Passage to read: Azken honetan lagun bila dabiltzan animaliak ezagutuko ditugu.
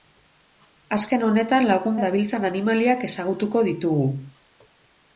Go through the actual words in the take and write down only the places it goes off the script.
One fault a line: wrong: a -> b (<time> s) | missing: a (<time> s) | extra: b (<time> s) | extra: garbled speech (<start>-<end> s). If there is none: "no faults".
missing: bila (2.0 s)